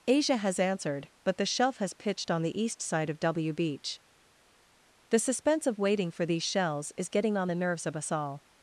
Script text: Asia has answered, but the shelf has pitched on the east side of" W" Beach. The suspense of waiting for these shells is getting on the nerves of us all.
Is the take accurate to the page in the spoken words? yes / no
yes